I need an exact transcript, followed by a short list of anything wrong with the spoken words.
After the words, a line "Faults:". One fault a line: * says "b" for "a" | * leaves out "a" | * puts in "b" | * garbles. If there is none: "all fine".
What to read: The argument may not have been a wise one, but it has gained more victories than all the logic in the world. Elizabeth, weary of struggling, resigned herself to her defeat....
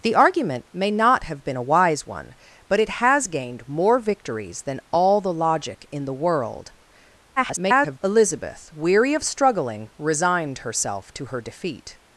The argument may not have been a wise one, but it has gained more victories than all the logic in the world. [garbled] Elizabeth, weary of struggling, resigned herself to her defeat....
Faults:
* garbles